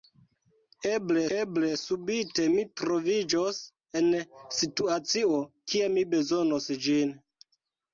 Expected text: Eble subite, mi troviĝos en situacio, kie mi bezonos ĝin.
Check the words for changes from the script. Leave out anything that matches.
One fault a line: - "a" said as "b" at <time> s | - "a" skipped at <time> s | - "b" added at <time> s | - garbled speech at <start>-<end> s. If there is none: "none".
- "eble" added at 1.4 s